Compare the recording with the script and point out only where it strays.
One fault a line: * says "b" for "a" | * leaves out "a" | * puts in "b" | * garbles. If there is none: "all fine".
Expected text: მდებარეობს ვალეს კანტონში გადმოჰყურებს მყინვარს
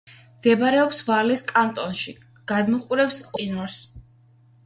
all fine